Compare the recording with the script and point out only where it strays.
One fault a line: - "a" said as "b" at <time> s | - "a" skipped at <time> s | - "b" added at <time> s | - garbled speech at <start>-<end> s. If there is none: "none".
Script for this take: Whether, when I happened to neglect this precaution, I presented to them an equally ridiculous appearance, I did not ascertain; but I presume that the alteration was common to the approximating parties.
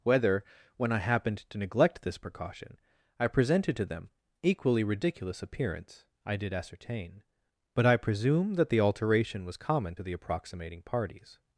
- "an" skipped at 4.1 s
- "not" skipped at 6.5 s